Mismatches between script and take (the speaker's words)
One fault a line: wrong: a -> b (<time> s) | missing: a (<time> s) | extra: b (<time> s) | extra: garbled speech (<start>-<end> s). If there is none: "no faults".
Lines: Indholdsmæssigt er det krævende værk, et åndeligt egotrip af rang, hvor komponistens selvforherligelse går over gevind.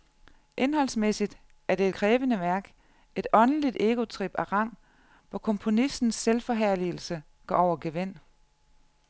no faults